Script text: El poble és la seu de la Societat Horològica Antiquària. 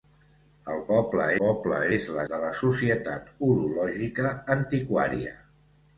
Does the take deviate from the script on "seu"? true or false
true